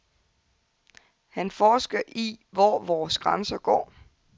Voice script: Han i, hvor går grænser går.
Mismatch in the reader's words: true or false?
true